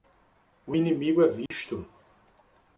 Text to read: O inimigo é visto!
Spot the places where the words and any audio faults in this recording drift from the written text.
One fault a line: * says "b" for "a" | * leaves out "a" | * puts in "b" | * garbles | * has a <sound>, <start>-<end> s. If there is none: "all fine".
* has a dropout, 1.5-1.5 s